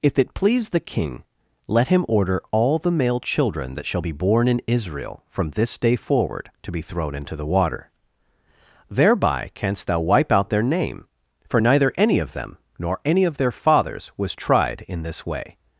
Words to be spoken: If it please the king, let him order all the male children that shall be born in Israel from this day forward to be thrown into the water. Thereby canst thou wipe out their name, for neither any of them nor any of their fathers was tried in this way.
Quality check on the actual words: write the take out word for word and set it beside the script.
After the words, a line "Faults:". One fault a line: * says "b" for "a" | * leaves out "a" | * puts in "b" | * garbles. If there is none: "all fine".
If it please the king, let him order all the male children that shall be born in Israel from this day forward to be thrown into the water. Thereby canst thou wipe out their name, for neither any of them nor any of their fathers was tried in this way.
Faults:
all fine